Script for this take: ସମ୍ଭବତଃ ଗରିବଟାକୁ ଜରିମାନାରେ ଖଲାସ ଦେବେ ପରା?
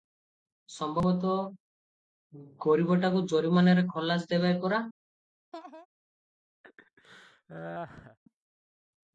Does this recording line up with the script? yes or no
yes